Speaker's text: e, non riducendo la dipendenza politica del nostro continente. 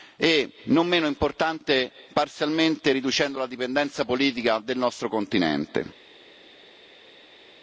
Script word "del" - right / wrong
right